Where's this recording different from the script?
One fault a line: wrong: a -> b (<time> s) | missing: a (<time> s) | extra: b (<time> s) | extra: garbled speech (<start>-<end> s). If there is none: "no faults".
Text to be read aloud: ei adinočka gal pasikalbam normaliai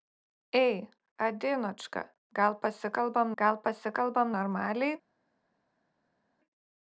extra: gal pasikalbam (3.4 s)